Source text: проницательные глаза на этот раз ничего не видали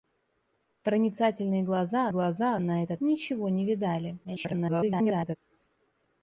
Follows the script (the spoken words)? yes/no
no